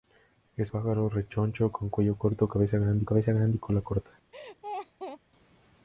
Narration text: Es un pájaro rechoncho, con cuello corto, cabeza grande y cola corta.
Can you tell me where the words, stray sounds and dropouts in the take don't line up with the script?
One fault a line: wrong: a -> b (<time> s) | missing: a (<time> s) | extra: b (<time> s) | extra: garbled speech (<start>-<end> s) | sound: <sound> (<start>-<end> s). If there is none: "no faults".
missing: un (0.7 s)
extra: cabeza grande (3.0 s)
sound: laugh (4.3-5.2 s)